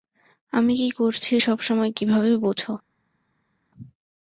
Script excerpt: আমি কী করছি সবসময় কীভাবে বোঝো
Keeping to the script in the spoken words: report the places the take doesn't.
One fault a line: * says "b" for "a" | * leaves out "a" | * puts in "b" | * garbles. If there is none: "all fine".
all fine